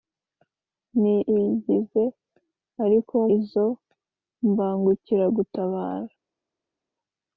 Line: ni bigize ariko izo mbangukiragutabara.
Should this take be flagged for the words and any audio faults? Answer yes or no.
no